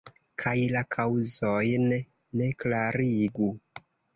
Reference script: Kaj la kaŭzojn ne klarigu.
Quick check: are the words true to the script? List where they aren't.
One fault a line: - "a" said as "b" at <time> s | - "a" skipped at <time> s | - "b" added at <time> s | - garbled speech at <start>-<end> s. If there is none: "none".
none